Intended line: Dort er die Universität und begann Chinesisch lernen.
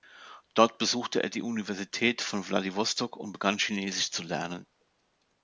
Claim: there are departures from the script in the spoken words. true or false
true